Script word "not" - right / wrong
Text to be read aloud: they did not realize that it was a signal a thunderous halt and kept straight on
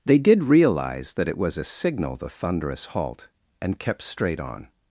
wrong